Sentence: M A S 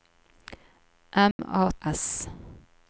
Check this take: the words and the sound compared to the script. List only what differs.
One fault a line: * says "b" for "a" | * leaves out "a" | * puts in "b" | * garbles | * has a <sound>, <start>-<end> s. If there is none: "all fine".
* has a dropout, 1.3-1.4 s